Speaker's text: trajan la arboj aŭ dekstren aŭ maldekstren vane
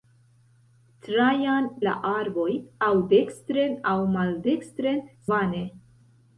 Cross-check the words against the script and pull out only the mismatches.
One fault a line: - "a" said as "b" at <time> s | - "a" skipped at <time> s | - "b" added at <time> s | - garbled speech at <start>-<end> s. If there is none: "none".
none